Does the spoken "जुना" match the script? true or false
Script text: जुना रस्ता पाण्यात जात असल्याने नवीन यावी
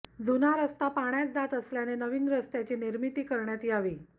true